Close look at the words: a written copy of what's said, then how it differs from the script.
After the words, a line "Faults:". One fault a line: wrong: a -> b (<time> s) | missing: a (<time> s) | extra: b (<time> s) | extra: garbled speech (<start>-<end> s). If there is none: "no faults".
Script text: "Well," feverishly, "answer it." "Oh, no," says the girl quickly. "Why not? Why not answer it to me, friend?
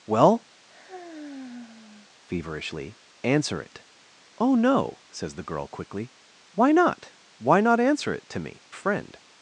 "Well," feverishly, "answer it." "Oh, no," says the girl quickly. "Why not? Why not answer it to me, friend?
Faults:
no faults